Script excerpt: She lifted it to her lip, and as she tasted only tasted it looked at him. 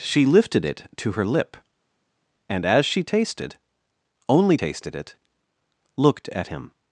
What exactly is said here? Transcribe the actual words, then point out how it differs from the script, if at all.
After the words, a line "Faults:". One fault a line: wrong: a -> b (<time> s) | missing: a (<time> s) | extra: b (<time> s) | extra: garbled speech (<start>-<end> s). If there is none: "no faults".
She lifted it to her lip, and as she tasted only tasted it looked at him.
Faults:
no faults